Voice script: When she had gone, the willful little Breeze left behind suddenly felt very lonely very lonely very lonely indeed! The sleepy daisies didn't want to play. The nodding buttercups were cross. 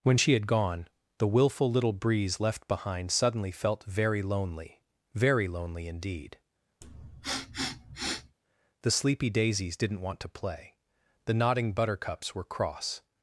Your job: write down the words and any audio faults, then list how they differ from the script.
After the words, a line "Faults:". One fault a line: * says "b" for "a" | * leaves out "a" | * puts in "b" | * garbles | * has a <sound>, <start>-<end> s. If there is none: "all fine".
When she had gone, the willful little Breeze left behind suddenly felt very lonely very lonely indeed! The sleepy daisies didn't want to play. The nodding buttercups were cross.
Faults:
* leaves out "very lonely"
* has a sniff, 6.8-8.4 s